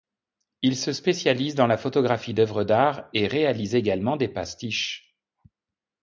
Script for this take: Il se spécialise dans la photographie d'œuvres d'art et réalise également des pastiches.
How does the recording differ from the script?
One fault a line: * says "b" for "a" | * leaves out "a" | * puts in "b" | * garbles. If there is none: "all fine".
all fine